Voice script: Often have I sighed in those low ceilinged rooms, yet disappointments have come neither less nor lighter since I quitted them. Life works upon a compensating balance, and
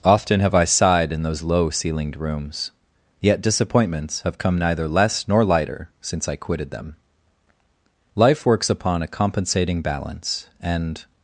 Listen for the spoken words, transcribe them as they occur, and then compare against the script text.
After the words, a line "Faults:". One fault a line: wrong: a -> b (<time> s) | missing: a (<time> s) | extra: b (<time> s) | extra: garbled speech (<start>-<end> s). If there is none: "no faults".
Often have I sighed in those low ceilinged rooms, yet disappointments have come neither less nor lighter since I quitted them. Life works upon a compensating balance, and
Faults:
no faults